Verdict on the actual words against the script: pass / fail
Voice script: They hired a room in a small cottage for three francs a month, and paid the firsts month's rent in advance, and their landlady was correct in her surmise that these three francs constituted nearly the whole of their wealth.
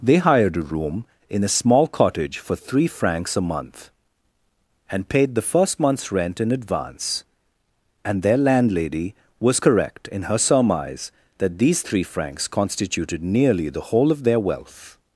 fail